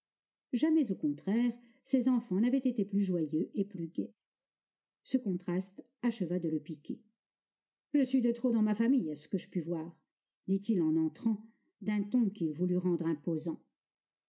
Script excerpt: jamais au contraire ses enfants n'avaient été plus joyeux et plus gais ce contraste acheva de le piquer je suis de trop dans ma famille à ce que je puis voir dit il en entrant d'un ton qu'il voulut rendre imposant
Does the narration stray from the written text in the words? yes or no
no